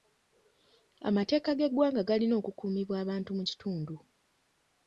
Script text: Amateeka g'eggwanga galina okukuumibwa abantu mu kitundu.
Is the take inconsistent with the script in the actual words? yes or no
no